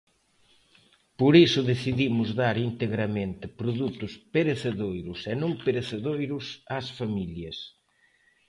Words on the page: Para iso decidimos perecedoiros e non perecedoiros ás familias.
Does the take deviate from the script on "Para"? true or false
true